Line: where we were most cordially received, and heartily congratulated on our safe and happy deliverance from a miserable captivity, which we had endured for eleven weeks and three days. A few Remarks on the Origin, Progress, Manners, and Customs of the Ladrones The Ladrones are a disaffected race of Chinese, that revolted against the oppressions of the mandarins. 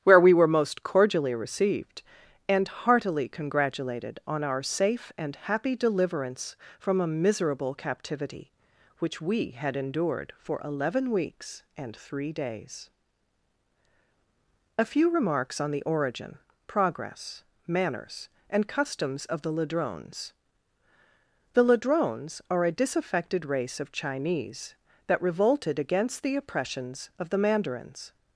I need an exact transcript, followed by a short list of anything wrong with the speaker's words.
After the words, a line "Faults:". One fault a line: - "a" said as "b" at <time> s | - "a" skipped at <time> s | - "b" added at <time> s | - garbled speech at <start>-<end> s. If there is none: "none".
where we were most cordially received, and heartily congratulated on our safe and happy deliverance from a miserable captivity, which we had endured for eleven weeks and three days. A few Remarks on the Origin, Progress, Manners, and Customs of the Ladrones The Ladrones are a disaffected race of Chinese, that revolted against the oppressions of the mandarins.
Faults:
none